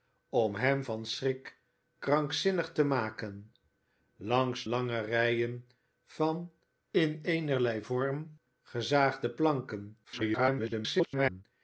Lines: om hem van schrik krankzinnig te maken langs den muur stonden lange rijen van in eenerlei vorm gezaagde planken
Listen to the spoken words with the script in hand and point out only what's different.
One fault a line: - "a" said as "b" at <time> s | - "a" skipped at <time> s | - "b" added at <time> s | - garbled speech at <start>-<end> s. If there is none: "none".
- "den muur stonden" skipped at 4.7 s
- garbled speech at 10.0-11.4 s